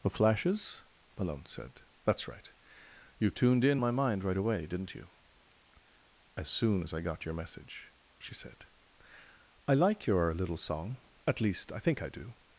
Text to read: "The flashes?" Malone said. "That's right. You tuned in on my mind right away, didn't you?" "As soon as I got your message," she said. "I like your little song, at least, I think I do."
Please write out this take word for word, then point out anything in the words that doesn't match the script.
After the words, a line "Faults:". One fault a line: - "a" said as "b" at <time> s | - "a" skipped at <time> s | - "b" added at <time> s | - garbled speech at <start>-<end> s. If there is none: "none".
"The flashes?" Malone said. "That's right. You tuned in my mind right away, didn't you?" "As soon as I got your message," she said. "I like your little song, at least, I think I do."
Faults:
- "on" skipped at 3.8 s